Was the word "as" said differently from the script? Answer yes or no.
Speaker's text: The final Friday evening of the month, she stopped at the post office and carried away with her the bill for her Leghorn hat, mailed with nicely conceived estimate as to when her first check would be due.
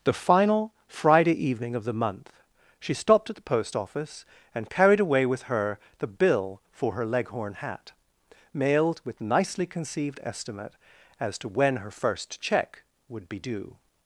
no